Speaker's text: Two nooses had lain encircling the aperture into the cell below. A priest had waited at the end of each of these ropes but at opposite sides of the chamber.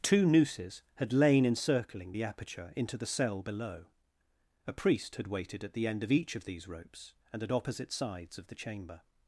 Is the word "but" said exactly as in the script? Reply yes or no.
no